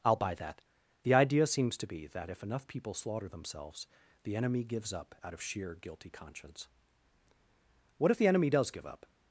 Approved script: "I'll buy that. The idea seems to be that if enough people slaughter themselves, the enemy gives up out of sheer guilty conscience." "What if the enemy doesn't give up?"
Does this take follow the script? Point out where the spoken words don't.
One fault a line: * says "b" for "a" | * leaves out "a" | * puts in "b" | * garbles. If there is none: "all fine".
* says "does" for "doesn't"